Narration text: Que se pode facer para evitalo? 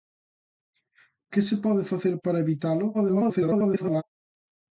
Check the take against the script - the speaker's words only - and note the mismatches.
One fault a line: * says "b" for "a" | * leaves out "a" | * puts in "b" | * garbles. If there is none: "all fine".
* garbles